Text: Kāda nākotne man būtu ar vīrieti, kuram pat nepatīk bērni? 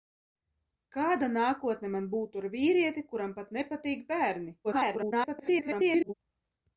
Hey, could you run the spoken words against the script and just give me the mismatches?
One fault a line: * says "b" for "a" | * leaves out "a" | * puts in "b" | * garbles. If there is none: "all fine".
* garbles